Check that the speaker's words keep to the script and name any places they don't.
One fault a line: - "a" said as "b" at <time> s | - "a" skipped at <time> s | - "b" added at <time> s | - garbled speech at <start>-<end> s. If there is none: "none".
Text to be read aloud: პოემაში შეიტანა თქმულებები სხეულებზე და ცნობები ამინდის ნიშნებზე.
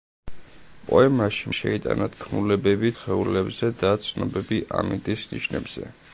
none